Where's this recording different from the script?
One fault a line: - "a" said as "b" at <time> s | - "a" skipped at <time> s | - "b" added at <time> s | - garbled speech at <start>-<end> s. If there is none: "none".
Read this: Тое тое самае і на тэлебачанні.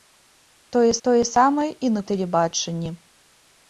none